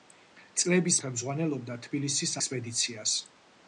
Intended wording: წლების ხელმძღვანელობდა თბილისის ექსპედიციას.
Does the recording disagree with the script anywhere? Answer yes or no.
no